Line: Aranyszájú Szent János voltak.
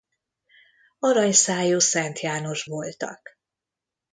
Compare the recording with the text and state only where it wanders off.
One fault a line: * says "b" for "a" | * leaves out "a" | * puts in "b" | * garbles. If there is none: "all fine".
all fine